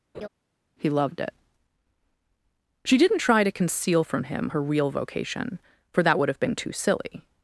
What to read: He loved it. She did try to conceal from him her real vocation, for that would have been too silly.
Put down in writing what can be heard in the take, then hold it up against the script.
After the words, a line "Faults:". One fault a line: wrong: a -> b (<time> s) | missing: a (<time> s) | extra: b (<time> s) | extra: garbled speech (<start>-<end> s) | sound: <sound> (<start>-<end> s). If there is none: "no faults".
He loved it. She didn't try to conceal from him her real vocation, for that would have been too silly.
Faults:
sound: laugh (0.1-0.3 s)
wrong: did -> didn't (3.0 s)